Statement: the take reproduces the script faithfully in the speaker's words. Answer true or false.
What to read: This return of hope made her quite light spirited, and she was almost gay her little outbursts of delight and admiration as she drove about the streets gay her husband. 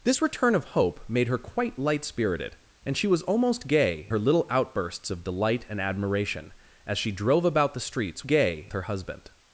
true